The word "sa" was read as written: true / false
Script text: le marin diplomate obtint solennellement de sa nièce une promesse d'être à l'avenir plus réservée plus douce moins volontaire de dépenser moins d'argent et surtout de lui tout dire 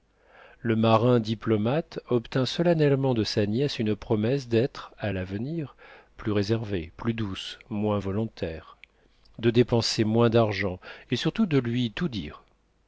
true